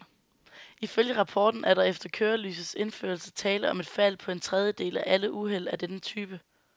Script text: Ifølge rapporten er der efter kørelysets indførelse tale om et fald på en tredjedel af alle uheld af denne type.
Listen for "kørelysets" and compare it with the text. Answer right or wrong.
right